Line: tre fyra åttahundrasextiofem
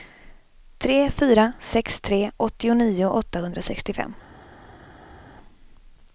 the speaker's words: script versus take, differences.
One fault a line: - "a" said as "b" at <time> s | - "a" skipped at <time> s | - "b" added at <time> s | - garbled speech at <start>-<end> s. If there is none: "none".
- "sex tre åttionio" added at 1.6 s